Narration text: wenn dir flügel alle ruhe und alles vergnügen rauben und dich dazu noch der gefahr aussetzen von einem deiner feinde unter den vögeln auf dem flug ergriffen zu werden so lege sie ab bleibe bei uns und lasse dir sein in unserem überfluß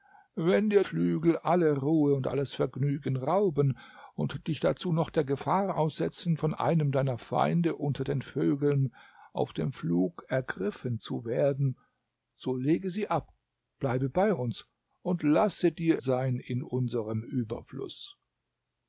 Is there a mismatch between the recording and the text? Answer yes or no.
no